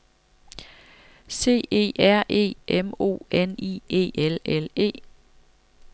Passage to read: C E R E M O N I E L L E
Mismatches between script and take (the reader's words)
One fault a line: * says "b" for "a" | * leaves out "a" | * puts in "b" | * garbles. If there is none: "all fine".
all fine